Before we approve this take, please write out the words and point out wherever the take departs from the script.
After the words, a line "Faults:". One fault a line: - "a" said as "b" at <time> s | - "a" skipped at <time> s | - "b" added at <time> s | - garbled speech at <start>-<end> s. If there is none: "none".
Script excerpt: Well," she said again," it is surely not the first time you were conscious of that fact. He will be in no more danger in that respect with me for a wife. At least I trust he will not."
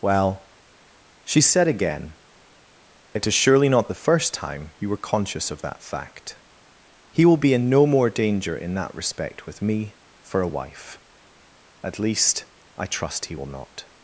Well," she said again," it is surely not the first time you were conscious of that fact. He will be in no more danger in that respect with me for a wife. At least I trust he will not."
Faults:
none